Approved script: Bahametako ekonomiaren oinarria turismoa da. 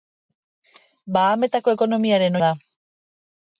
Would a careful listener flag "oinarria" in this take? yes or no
yes